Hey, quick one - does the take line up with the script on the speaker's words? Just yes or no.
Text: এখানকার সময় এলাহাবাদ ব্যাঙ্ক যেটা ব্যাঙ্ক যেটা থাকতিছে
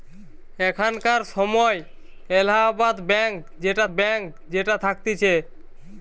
yes